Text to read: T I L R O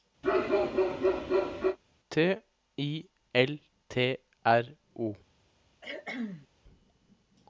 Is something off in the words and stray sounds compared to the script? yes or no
yes